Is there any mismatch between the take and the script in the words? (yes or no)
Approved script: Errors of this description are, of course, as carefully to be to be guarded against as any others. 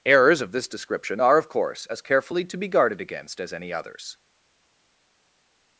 yes